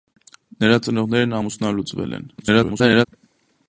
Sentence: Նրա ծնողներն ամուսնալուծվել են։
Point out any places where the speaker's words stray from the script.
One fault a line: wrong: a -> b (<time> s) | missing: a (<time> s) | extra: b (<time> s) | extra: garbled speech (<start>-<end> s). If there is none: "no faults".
extra: garbled speech (2.4-3.1 s)